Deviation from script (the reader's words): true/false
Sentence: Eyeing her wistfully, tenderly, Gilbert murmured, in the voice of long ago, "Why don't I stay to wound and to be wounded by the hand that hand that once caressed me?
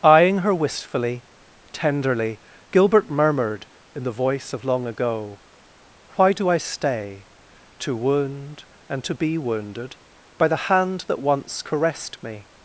true